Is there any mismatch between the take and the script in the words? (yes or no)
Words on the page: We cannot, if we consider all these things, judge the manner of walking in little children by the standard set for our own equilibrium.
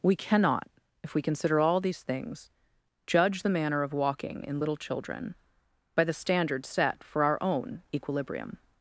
no